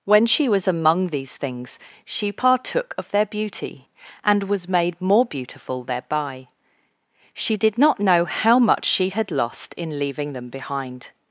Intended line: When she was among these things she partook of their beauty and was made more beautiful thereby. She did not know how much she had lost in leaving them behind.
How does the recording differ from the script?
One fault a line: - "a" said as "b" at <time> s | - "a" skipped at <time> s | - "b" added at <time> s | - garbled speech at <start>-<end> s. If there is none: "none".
none